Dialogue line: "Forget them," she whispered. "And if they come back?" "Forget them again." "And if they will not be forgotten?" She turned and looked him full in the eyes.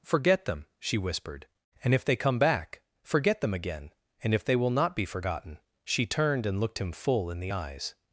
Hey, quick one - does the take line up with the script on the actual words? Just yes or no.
yes